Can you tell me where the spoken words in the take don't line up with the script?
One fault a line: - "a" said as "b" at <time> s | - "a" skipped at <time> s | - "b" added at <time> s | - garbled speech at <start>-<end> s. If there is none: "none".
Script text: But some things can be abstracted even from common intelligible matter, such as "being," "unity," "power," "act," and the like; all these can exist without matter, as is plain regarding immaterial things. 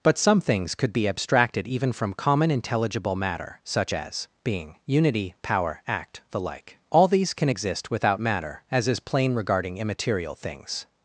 - "can" said as "could" at 0.7 s
- "and" skipped at 6.2 s